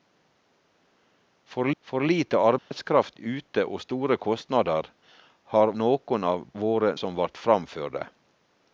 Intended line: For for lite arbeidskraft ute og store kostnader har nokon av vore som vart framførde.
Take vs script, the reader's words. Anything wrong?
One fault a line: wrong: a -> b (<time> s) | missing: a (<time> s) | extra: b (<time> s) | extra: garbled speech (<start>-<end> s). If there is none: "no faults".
no faults